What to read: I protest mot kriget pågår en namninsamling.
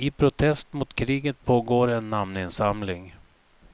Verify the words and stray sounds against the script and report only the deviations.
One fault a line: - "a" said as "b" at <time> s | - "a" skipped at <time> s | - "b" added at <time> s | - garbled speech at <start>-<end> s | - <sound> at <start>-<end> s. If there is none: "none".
none